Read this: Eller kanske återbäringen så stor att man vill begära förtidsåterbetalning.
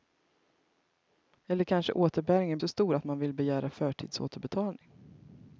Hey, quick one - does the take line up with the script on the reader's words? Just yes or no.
yes